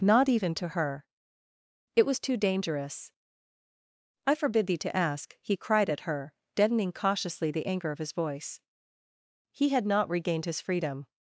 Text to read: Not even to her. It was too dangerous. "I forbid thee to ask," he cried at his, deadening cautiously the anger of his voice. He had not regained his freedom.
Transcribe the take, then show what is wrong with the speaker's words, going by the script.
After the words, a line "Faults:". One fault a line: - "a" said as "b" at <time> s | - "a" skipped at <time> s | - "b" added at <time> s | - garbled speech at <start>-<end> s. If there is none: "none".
Not even to her. It was too dangerous. "I forbid thee to ask," he cried at her, deadening cautiously the anger of his voice. He had not regained his freedom.
Faults:
- "his" said as "her" at 6.0 s